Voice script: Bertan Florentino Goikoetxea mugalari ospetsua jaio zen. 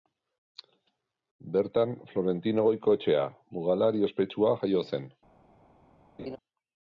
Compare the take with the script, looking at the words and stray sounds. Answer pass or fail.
fail